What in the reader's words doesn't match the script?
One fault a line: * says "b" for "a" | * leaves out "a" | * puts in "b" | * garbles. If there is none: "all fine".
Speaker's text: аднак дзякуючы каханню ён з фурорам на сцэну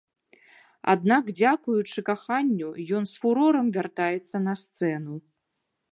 * puts in "вяртаецца"